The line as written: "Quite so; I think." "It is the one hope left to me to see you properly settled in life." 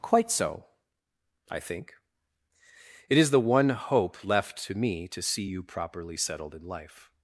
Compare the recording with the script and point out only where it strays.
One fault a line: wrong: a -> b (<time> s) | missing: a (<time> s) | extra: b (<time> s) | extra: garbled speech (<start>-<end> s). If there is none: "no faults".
no faults